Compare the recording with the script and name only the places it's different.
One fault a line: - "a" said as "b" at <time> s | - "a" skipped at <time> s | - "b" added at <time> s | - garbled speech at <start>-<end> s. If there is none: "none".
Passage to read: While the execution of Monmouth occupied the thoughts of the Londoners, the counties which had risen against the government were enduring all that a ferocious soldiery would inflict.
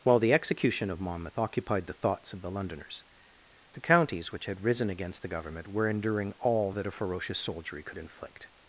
- "would" said as "could" at 7.8 s